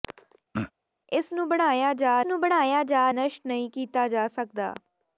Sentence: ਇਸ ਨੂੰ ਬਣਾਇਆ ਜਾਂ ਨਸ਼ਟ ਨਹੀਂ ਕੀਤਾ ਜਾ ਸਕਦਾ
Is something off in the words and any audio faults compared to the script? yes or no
yes